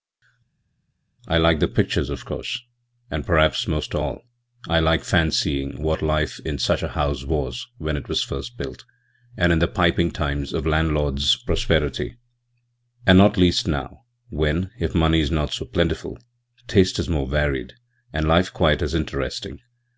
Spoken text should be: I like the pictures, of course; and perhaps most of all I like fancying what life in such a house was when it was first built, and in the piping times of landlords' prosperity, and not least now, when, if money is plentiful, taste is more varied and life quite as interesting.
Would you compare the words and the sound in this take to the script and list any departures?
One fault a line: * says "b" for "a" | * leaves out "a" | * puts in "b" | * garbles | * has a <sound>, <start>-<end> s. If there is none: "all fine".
* puts in "not so"